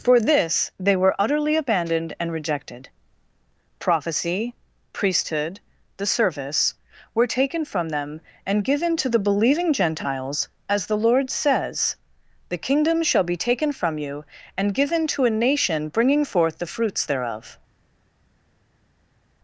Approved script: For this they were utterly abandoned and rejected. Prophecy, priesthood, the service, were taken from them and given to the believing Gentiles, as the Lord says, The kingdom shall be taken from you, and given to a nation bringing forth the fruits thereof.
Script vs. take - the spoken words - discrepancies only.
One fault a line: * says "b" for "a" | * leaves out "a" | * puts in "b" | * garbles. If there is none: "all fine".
all fine